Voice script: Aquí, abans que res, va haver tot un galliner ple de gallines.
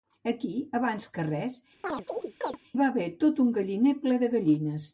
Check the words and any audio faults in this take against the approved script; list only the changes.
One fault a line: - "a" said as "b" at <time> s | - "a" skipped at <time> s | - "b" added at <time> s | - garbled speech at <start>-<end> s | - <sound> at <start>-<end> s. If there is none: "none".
- chirp at 1.8-2.6 s